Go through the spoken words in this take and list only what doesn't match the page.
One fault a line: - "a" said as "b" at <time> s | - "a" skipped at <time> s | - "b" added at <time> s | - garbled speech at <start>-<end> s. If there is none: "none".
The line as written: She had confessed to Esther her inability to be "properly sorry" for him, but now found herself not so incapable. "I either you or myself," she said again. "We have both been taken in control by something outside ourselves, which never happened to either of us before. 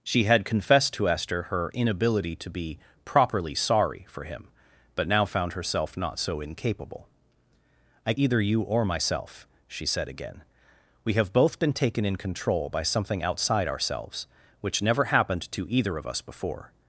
none